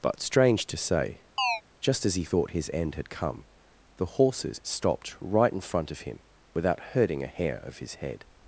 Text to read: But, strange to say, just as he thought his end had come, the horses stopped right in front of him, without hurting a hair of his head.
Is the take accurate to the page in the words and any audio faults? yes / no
no